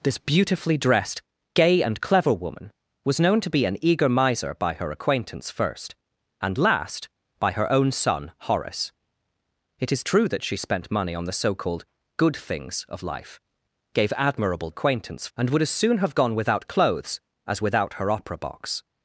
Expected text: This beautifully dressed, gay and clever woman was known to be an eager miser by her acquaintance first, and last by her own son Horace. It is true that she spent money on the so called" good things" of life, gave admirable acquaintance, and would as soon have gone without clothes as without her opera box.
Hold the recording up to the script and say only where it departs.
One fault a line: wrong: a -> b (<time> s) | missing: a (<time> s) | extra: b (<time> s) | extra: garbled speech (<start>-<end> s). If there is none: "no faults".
no faults